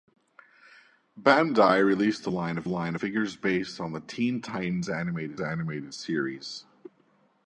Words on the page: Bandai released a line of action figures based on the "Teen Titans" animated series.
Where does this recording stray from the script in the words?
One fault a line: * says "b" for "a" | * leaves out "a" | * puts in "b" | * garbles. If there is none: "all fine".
* says "line" for "action"
* puts in "animated"